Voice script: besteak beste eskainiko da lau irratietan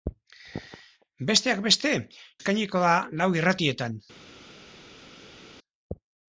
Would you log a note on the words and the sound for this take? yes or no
no